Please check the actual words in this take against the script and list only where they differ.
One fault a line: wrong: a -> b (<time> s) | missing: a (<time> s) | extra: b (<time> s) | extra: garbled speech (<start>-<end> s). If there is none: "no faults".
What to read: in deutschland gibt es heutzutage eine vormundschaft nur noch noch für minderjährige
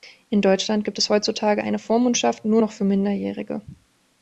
missing: noch (2.7 s)